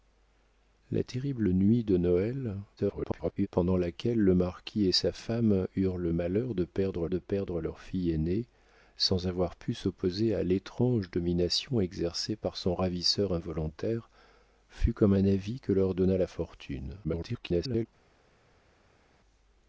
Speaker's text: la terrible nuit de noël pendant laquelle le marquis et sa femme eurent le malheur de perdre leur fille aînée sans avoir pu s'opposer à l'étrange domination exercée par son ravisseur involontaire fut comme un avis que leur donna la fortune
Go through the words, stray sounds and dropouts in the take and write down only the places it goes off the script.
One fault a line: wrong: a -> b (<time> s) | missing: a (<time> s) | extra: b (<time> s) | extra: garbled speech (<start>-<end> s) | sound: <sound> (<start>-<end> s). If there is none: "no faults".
extra: garbled speech (2.8-3.5 s)
extra: de perdre (7.1 s)
extra: garbled speech (17.0-17.9 s)